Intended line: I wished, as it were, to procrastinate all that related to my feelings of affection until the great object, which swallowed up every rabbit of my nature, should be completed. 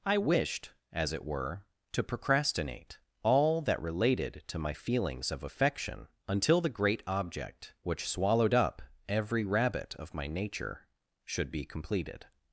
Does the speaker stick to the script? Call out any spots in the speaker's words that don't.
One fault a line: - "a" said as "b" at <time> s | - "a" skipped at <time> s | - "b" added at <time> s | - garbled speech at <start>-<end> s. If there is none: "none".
none